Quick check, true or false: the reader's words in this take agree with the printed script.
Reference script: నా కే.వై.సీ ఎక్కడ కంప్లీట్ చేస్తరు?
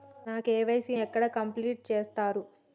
true